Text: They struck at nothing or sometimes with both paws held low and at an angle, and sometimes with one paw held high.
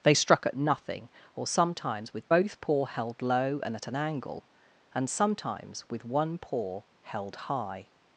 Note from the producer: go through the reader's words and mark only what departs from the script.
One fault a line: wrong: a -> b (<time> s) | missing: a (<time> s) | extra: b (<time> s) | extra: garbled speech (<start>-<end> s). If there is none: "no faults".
wrong: paws -> paw (2.6 s)